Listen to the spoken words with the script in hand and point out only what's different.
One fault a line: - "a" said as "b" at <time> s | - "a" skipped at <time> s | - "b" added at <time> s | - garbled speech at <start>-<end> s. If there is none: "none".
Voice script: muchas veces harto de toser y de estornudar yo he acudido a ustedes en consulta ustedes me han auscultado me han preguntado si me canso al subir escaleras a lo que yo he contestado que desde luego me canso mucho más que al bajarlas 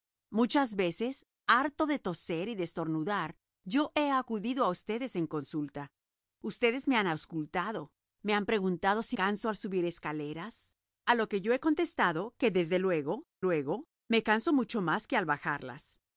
- "me" skipped at 9.2 s
- "luego" added at 13.4 s